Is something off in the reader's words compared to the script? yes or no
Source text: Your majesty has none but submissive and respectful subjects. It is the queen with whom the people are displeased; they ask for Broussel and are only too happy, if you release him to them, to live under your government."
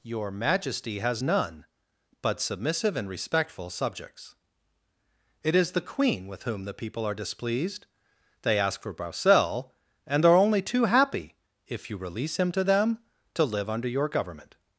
no